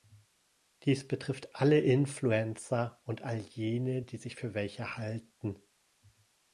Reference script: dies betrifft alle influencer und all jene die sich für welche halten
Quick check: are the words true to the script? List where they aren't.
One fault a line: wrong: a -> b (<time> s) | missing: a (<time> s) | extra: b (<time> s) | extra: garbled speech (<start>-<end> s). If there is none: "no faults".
no faults